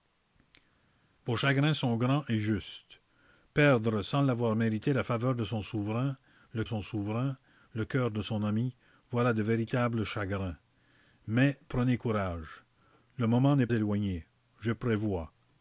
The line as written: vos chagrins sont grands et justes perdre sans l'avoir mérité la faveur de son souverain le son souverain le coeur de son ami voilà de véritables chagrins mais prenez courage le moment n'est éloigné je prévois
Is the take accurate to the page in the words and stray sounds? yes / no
yes